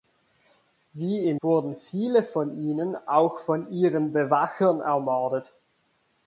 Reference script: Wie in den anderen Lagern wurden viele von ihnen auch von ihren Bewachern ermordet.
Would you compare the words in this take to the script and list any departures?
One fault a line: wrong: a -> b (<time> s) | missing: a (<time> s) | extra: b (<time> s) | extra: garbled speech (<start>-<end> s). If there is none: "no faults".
missing: den anderen Lagern (1.4 s)